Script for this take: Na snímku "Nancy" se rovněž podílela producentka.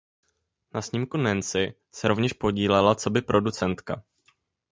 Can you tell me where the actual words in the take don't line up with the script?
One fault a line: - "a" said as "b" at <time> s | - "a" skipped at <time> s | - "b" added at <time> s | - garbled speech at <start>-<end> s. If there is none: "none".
- "coby" added at 2.9 s